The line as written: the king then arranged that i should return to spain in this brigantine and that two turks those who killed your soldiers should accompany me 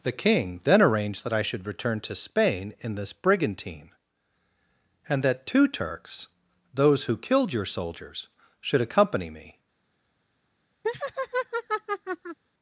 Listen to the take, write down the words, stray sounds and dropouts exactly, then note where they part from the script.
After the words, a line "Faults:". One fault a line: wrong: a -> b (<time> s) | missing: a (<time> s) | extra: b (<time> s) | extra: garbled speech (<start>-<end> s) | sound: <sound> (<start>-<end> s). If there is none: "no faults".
the king then arranged that i should return to spain in this brigantine and that two turks those who killed your soldiers should accompany me
Faults:
sound: laugh (10.8-12.4 s)